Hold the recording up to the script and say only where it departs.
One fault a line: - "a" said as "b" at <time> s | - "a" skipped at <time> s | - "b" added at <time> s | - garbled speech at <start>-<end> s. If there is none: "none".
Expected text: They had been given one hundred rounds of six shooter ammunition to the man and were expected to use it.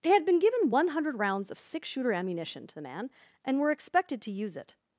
none